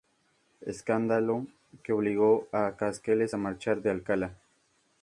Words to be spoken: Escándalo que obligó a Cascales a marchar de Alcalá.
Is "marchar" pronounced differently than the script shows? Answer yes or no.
no